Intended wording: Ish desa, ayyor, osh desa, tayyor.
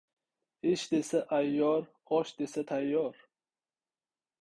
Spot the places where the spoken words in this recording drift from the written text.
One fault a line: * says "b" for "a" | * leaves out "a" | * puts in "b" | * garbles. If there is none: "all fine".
all fine